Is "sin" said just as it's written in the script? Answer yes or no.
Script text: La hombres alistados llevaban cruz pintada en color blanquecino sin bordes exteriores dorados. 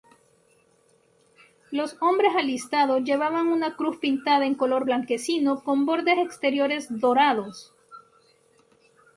no